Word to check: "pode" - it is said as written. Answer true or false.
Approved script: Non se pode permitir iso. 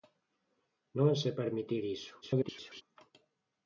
false